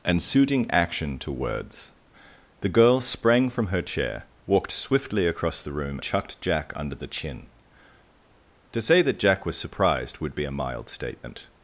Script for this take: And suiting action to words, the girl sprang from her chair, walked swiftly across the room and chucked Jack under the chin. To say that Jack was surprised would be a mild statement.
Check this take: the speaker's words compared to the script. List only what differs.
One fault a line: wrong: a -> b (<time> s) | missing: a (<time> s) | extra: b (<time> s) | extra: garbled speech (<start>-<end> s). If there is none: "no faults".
missing: and (6.0 s)